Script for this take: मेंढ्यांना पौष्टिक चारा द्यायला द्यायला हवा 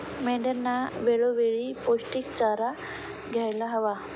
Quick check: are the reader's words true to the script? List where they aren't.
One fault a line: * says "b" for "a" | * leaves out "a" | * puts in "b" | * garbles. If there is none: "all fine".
* puts in "वेळोवेळी"
* leaves out "द्यायला"